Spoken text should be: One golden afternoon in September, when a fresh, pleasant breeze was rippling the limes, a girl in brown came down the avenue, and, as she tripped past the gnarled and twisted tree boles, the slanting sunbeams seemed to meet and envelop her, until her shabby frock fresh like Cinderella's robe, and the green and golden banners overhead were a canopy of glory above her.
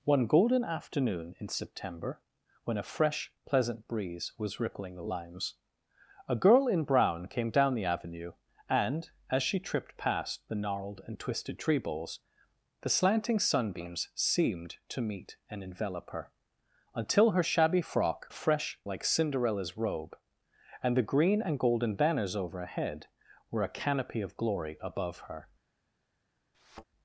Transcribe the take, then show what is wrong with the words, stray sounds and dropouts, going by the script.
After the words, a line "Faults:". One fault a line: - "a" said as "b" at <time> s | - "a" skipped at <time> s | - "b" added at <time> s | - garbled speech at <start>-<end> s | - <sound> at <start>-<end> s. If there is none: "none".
One golden afternoon in September, when a fresh, pleasant breeze was rippling the limes, a girl in brown came down the avenue, and, as she tripped past the gnarled and twisted tree boles, the slanting sunbeams seemed to meet and envelop her, until her shabby frock fresh like Cinderella's robe, and the green and golden banners overhead were a canopy of glory above her.
Faults:
- thud at 26.5-26.8 s